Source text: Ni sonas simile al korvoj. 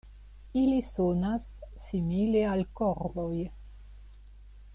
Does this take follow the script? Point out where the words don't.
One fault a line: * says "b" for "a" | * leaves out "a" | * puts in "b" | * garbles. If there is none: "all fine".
* says "Ili" for "Ni"